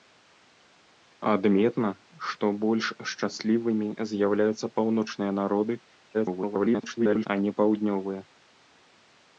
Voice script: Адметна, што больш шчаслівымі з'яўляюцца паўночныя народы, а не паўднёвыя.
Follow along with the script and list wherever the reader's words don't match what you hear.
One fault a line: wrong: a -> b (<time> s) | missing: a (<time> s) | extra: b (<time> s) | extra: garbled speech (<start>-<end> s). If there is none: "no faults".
extra: garbled speech (6.1-7.3 s)